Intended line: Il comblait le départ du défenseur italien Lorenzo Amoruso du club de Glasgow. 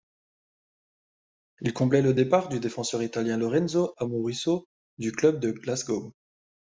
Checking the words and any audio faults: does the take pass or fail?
pass